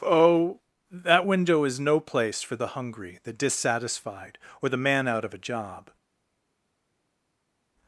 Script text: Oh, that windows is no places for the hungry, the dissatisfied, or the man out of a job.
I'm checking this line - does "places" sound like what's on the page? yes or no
no